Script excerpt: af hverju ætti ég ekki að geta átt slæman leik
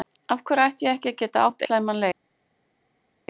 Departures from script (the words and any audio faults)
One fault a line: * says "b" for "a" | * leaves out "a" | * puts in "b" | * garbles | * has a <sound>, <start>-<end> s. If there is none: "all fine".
all fine